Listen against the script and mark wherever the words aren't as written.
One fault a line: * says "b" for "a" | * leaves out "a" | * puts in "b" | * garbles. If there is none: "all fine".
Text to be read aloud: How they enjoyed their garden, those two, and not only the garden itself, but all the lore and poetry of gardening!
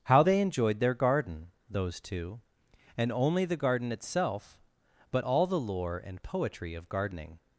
* leaves out "not"